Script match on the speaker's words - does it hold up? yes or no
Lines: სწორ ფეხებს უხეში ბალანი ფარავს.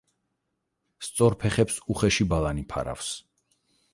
yes